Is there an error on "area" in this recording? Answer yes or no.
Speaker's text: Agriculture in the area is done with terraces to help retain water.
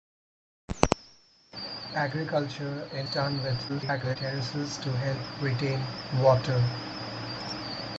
yes